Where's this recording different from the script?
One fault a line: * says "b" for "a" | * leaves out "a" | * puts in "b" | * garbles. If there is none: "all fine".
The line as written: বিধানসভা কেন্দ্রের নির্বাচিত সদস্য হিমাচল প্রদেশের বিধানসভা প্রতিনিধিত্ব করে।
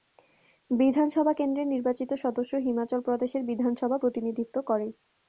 all fine